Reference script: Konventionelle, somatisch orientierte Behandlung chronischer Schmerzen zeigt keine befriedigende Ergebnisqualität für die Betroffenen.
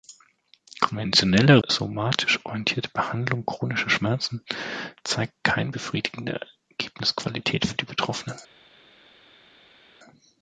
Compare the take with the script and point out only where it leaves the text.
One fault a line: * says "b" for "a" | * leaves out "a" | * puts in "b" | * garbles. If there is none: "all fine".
all fine